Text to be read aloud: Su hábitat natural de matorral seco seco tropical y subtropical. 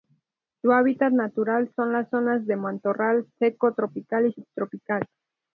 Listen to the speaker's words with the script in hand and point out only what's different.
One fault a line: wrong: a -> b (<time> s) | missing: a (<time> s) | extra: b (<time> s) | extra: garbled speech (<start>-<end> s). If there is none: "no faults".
extra: son las zonas (1.8 s)
missing: seco (3.8 s)